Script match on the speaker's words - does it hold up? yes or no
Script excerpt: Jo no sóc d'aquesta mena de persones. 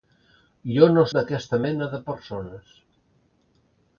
no